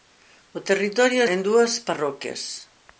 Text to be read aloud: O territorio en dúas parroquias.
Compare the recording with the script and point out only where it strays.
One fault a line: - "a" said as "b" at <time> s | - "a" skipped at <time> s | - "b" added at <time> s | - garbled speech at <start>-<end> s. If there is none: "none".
none